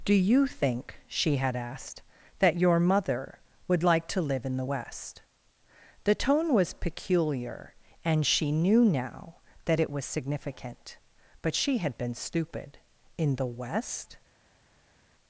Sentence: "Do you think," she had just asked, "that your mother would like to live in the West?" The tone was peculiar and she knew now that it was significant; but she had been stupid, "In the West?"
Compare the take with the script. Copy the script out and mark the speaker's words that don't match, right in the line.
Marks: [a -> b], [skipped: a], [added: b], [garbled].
"Do you think," she had [skipped: just] asked, "that your mother would like to live in the West?" The tone was peculiar and she knew now that it was significant; but she had been stupid, "In the West?"